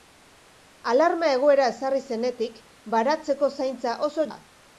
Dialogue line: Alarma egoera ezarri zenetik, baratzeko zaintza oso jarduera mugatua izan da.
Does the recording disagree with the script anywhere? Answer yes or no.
yes